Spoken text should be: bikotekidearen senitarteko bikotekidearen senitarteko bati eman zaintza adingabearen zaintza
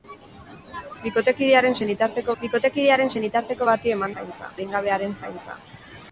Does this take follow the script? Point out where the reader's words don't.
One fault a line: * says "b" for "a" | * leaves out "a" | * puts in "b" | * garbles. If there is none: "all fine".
all fine